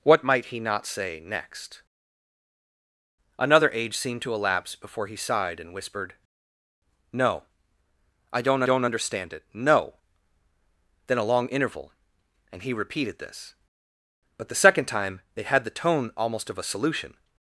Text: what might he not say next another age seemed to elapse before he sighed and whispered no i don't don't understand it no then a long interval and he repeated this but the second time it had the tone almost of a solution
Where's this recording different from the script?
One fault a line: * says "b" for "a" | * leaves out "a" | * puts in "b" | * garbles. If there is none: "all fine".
all fine